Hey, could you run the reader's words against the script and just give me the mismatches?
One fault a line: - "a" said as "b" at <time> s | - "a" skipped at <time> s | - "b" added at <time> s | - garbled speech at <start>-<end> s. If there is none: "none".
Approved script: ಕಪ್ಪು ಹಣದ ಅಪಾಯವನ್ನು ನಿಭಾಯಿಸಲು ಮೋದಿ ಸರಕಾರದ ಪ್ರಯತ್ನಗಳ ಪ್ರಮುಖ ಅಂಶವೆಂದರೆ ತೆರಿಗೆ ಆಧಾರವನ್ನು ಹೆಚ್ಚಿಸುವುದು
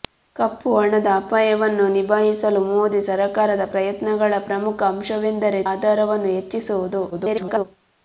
- "ತೆರಿಗೆ" skipped at 5.6 s
- garbled speech at 7.1-7.6 s